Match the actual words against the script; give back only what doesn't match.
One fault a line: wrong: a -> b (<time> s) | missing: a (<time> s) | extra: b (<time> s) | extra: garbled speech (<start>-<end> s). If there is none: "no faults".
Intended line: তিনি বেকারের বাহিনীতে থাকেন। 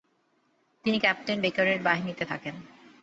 extra: ক্যাপ্টেন (1.0 s)